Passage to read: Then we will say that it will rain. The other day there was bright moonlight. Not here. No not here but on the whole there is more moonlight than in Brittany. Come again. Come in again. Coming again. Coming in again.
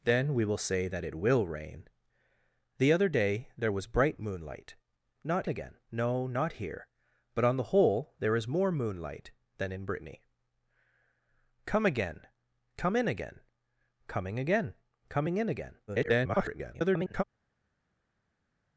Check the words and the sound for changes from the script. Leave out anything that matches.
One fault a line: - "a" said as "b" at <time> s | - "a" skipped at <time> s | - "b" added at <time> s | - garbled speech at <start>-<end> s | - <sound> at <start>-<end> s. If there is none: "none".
- "here" said as "again" at 5.5 s
- garbled speech at 15.9-17.2 s